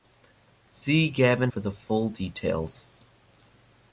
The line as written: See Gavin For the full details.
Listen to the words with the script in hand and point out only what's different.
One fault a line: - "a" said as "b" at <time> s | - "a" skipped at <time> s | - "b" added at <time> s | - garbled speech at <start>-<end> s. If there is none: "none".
none